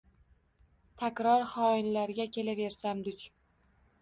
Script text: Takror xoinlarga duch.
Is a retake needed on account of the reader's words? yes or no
yes